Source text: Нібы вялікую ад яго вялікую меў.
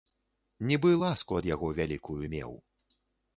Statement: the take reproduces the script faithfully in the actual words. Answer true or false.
false